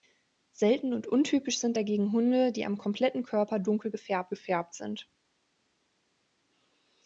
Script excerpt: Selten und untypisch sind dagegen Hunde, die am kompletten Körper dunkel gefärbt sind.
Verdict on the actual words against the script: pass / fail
fail